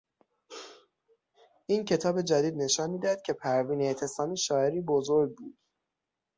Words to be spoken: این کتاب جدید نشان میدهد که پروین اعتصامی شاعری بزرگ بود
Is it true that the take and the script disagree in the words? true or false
false